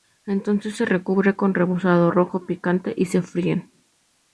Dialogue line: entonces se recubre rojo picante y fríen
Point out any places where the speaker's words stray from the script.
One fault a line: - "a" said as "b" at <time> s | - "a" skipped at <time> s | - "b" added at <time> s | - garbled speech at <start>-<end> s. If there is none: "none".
- "con rebozado" added at 1.4 s
- "se" added at 3.0 s